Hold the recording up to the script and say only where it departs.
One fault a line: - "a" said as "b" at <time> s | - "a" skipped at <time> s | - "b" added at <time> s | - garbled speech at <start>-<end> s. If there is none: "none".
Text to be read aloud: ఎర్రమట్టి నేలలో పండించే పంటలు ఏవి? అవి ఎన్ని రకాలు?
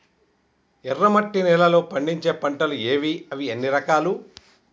none